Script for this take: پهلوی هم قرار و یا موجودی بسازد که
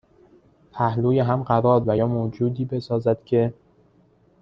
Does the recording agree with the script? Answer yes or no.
yes